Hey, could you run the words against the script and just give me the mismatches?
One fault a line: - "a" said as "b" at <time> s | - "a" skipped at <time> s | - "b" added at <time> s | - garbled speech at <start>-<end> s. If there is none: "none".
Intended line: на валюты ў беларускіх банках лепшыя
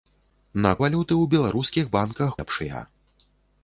none